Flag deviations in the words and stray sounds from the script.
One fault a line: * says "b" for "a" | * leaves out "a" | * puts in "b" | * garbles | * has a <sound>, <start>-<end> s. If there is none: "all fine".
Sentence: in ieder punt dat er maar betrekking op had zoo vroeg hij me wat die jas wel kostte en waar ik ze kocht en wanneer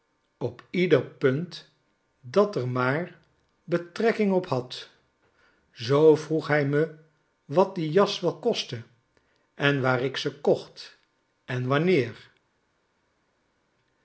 * says "op" for "in"